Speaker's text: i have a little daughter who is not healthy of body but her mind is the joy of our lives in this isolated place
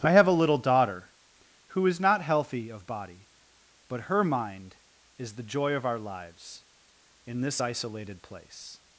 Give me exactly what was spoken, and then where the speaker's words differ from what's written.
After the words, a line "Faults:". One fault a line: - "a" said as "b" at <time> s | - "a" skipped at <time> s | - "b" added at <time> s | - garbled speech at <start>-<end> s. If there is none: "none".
i have a little daughter who is not healthy of body but her mind is the joy of our lives in this isolated place
Faults:
none